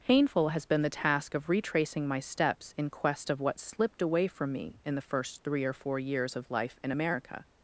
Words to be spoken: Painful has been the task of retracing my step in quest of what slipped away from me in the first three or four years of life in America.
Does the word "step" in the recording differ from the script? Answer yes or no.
yes